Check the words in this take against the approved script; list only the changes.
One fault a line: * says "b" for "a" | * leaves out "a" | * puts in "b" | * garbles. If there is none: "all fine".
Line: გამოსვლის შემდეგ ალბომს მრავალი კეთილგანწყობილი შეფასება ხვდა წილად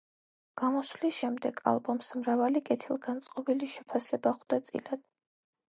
all fine